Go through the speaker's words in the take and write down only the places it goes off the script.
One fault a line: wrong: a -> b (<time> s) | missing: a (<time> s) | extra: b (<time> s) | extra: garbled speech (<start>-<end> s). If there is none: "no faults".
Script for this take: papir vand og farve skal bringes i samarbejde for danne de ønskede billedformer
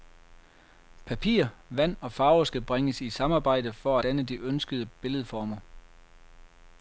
no faults